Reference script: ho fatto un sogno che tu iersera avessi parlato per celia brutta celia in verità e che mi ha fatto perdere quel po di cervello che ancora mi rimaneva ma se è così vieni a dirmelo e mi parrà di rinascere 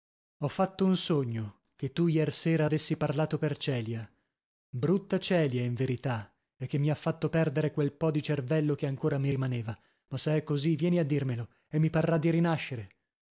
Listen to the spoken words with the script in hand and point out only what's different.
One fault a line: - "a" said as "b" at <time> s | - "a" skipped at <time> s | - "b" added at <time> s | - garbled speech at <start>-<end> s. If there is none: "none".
none